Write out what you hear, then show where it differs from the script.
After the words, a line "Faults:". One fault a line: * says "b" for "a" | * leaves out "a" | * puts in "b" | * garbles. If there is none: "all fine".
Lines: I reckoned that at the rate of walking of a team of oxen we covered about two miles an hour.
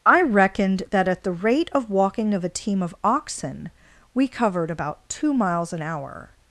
I reckoned that at the rate of walking of a team of oxen we covered about two miles an hour.
Faults:
all fine